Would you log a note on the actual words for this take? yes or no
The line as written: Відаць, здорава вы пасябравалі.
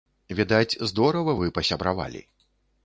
no